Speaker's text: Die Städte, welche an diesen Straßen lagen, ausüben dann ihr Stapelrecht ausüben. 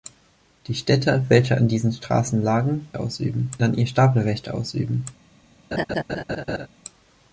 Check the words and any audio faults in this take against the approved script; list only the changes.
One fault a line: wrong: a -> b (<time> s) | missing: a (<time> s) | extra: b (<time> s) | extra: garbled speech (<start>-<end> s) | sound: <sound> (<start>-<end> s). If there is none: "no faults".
sound: laugh (5.7-6.7 s)